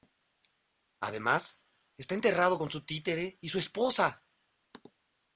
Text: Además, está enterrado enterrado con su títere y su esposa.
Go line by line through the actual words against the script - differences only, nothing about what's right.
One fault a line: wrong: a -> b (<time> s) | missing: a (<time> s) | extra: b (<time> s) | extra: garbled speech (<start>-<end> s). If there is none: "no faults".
missing: enterrado (2.6 s)